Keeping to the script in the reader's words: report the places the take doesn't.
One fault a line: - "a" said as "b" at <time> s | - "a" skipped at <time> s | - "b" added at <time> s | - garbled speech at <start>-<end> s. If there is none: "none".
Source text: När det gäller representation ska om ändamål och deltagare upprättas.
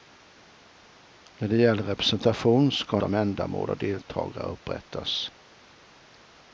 none